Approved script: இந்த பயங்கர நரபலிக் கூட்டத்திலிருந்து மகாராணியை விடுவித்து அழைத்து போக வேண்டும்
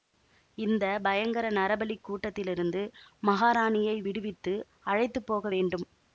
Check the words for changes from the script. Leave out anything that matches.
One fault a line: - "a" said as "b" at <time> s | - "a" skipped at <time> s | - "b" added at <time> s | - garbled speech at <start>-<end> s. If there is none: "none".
none